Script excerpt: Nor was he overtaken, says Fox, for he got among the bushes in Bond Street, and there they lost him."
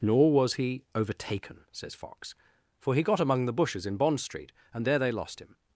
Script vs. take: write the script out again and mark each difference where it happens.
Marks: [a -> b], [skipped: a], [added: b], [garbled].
Nor was he overtaken, says Fox, for he got among the bushes in Bond Street, and there they lost him."